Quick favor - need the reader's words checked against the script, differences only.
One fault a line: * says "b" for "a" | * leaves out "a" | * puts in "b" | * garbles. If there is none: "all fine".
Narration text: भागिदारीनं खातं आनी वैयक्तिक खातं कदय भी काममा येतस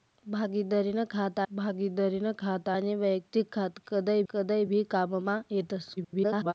* puts in "भागिदारीनं खातं"
* puts in "कदय"
* garbles